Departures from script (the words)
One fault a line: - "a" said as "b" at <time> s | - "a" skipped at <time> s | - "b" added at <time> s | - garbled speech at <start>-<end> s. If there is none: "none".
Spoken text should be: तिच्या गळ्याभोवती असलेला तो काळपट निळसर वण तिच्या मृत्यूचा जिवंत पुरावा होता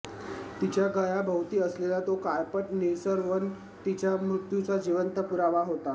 none